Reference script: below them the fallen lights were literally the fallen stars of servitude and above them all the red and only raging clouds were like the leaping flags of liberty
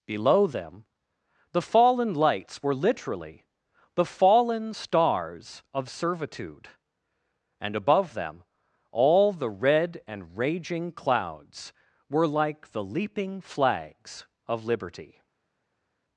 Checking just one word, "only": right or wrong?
wrong